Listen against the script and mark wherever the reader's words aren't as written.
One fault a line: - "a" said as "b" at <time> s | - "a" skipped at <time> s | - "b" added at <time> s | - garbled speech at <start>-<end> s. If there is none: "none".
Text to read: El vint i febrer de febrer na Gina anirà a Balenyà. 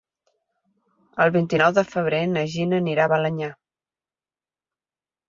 - "febrer" said as "nou" at 1.6 s